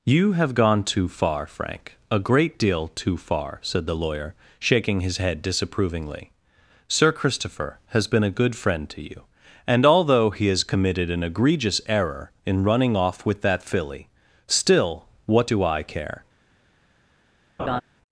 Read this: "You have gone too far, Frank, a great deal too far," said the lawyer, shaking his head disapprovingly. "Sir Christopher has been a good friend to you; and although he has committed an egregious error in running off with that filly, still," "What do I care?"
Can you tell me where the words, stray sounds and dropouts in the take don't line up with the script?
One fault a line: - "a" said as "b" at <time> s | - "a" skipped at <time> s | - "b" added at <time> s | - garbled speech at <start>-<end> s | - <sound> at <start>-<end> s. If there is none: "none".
- laugh at 17.6-17.8 s